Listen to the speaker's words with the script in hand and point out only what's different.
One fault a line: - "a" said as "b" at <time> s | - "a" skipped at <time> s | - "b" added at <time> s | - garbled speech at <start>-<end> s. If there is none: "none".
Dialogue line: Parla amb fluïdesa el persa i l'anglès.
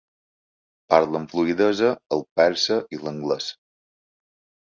none